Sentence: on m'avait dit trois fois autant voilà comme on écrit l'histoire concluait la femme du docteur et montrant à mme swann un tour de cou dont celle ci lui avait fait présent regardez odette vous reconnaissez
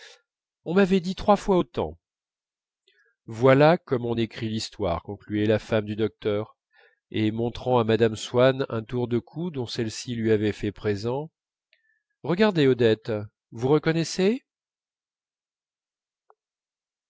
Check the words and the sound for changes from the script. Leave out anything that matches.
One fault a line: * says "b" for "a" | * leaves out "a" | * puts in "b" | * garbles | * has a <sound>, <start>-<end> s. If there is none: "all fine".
all fine